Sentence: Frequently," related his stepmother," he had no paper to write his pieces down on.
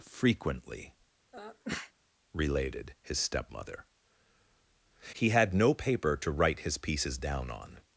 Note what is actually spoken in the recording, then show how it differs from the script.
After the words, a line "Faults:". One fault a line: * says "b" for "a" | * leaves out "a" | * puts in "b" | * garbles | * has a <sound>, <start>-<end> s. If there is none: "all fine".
Frequently," related his stepmother," he had no paper to write his pieces down on.
Faults:
* has a sneeze, 1.3-1.9 s